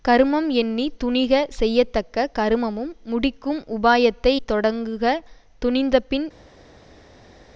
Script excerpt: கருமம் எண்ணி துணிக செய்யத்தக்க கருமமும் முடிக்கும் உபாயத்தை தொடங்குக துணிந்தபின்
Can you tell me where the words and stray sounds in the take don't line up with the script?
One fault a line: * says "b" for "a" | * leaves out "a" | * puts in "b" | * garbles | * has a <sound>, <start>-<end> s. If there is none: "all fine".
all fine